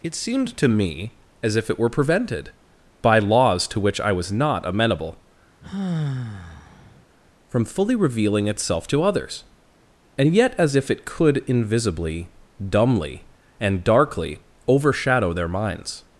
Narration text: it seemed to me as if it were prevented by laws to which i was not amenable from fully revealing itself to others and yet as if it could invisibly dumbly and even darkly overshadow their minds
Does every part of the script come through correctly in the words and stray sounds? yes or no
no